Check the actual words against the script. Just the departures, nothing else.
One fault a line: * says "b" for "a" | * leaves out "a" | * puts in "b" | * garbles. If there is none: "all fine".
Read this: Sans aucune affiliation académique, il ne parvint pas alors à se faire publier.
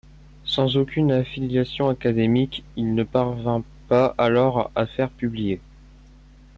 * leaves out "se"